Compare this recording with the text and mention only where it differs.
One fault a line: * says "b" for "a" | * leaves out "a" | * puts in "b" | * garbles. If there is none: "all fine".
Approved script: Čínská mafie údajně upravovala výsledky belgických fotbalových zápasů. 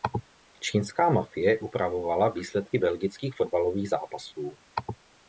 * leaves out "údajně"